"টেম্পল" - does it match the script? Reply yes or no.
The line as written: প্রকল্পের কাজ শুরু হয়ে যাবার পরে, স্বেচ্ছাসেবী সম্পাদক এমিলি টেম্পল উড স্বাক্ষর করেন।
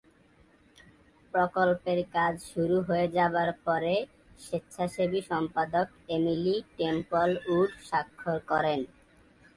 yes